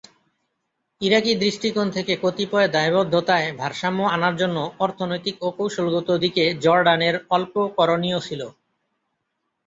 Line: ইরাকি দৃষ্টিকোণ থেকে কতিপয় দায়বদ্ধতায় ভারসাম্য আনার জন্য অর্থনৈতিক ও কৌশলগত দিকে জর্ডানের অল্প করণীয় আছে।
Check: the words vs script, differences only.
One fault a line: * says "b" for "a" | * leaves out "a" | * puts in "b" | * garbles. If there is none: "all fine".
* says "ছিল" for "আছে"